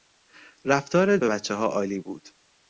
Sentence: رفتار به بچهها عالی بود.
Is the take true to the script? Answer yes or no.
yes